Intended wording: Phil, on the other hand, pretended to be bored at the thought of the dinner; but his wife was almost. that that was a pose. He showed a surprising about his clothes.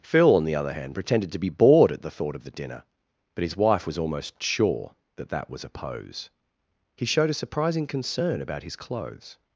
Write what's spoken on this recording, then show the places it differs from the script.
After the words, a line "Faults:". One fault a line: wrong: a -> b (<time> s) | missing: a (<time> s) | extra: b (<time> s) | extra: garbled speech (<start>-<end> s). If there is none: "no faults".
Phil, on the other hand, pretended to be bored at the thought of the dinner; but his wife was almost sure. that that was a pose. He showed a surprising concern about his clothes.
Faults:
extra: sure (4.4 s)
extra: concern (7.9 s)